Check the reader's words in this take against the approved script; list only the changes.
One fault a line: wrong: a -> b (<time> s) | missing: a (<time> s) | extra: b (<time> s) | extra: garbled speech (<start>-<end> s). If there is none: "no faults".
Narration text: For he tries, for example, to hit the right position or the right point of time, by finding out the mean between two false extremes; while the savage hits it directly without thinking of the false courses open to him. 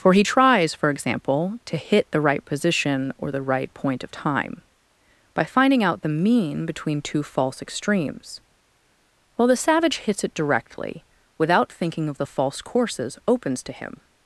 wrong: open -> opens (13.3 s)